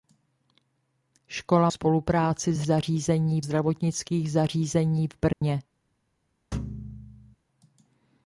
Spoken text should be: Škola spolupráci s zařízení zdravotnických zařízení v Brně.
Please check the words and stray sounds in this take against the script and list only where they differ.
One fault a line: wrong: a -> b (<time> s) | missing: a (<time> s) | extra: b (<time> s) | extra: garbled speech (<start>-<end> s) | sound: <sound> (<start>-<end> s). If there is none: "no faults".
sound: dropout (5.3-5.4 s)
sound: thud (6.5-7.4 s)